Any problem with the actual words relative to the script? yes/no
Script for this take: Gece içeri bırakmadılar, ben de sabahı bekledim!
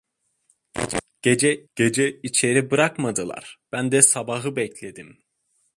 yes